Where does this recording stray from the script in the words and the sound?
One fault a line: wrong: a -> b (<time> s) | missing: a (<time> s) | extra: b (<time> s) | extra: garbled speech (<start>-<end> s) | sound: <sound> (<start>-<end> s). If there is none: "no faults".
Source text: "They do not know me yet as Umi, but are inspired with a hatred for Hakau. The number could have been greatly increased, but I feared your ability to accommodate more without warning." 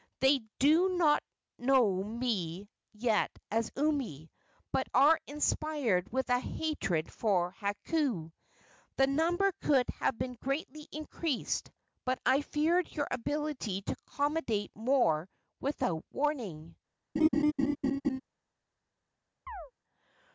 sound: laugh (17.2-18.2 s)
sound: chirp (19.5-19.7 s)